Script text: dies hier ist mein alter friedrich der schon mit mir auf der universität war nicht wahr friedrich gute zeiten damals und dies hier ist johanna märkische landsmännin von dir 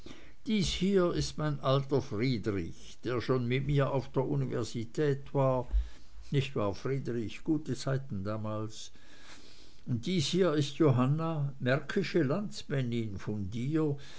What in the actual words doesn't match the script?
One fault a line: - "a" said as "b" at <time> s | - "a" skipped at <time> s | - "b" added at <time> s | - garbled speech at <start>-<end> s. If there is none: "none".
none